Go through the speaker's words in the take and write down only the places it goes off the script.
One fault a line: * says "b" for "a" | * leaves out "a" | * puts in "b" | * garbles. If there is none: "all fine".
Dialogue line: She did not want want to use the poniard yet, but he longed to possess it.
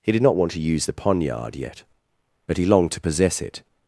* says "He" for "She"
* leaves out "want"